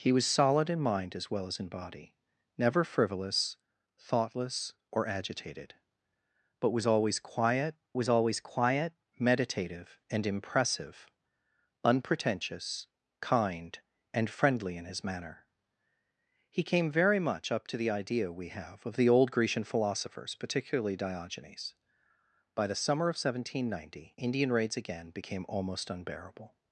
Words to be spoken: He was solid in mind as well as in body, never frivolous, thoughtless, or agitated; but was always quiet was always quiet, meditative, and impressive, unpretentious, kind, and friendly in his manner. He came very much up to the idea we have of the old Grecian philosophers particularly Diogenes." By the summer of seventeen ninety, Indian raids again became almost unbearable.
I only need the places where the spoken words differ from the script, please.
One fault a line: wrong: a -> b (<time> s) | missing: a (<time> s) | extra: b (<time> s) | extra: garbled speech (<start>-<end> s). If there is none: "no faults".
no faults